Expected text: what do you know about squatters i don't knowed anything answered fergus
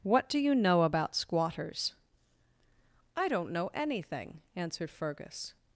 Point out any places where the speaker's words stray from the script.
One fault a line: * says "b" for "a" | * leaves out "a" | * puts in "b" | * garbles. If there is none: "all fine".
* says "know" for "knowed"